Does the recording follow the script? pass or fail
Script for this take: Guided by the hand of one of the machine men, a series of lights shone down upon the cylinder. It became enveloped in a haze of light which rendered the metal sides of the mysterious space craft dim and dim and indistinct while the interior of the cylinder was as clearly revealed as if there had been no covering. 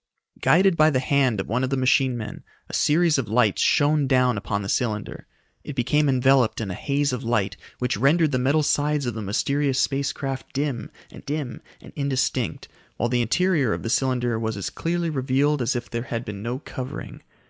pass